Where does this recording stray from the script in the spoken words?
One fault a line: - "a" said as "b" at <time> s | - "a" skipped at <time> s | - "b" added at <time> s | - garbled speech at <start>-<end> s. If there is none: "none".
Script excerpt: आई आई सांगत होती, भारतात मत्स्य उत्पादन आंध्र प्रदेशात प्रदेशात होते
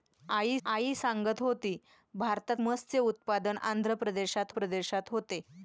none